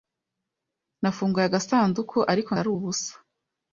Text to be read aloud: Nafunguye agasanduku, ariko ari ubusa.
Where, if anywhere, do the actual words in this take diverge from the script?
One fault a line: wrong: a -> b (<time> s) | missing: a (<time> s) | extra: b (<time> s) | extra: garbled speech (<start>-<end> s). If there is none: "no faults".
no faults